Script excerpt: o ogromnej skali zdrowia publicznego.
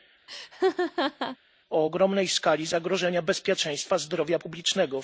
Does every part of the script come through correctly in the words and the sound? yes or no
no